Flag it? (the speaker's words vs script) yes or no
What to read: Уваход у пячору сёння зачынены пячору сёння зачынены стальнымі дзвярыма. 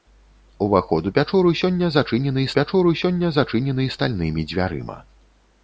no